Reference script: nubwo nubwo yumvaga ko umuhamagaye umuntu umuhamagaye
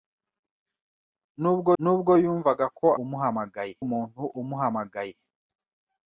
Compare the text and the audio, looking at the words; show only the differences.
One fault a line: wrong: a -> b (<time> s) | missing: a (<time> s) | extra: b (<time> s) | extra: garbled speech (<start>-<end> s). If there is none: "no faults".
no faults